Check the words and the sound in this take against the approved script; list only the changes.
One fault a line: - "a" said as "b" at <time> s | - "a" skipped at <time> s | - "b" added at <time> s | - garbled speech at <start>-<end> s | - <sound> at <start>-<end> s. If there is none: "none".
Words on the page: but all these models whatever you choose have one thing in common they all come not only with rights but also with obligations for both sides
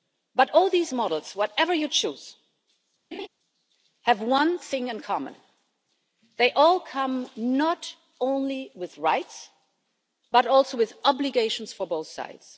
- laugh at 3.1-3.3 s